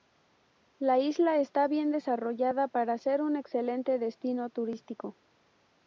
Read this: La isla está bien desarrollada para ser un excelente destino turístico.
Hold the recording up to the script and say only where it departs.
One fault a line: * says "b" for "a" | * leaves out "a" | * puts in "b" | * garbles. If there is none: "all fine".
all fine